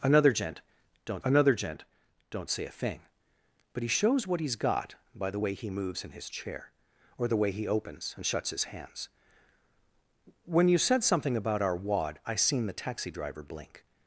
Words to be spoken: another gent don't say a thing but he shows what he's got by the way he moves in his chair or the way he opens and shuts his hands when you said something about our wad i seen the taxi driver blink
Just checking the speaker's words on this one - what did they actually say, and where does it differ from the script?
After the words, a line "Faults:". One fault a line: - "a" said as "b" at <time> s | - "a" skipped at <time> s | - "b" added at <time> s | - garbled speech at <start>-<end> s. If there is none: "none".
another gent don't another gent don't say a thing but he shows what he's got by the way he moves in his chair or the way he opens and shuts his hands when you said something about our wad i seen the taxi driver blink
Faults:
- "another gent don't" added at 1.2 s